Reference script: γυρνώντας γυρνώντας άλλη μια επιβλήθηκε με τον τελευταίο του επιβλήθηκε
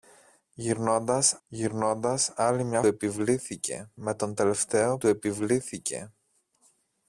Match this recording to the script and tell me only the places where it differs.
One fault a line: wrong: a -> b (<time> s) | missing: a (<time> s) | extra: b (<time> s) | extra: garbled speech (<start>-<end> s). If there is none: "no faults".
no faults